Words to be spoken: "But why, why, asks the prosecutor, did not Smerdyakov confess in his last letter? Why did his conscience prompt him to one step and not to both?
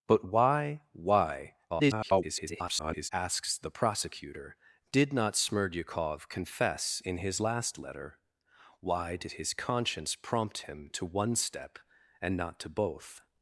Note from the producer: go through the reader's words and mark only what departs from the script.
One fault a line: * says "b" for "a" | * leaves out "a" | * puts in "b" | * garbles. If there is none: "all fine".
* garbles